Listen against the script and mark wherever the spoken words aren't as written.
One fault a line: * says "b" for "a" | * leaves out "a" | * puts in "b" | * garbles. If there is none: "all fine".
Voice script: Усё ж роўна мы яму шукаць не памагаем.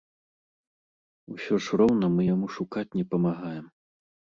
all fine